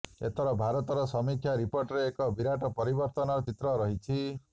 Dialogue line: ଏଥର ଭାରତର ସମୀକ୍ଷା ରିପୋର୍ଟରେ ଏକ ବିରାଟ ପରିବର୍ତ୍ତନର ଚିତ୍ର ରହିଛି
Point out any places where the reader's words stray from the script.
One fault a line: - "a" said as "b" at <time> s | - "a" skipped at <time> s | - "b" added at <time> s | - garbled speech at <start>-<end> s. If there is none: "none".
none